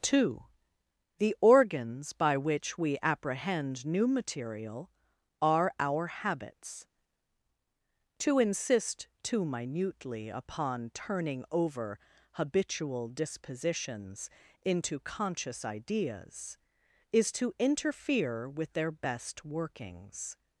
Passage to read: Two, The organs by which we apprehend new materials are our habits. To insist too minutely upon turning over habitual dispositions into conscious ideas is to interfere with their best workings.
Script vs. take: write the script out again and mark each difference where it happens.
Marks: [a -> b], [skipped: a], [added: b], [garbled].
Two, The organs by which we apprehend new [materials -> material] are our habits. To insist too minutely upon turning over habitual dispositions into conscious ideas is to interfere with their best workings.